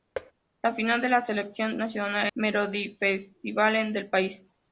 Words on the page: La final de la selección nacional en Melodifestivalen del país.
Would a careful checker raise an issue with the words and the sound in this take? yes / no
yes